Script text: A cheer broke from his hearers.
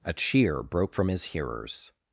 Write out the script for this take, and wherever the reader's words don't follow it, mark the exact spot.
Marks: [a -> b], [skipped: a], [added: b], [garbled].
A cheer broke from his hearers.